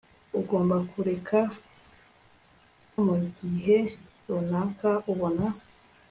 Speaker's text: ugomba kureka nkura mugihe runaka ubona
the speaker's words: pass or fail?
fail